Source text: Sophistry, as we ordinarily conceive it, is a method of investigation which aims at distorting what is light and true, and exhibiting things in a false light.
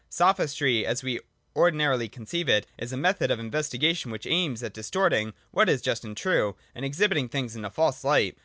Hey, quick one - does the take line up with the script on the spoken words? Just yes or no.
no